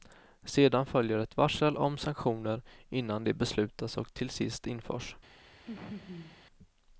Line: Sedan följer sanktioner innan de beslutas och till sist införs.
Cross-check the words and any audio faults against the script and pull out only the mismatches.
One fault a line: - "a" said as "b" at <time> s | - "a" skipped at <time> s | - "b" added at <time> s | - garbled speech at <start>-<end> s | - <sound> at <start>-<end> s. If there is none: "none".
- "ett varsel om" added at 1.2 s
- laugh at 5.7-6.4 s